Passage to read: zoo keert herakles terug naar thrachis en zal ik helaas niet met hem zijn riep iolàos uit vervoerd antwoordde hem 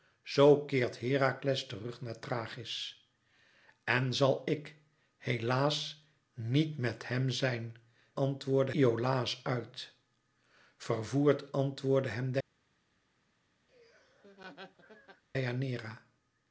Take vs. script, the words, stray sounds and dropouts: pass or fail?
fail